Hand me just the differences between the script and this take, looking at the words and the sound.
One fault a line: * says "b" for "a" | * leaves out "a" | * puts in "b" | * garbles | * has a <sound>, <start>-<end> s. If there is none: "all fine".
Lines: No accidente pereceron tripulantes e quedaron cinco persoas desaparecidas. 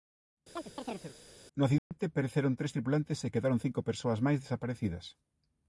* has a chirp, 0.6-1.2 s
* has a dropout, 1.8-1.9 s
* puts in "tres"
* puts in "máis"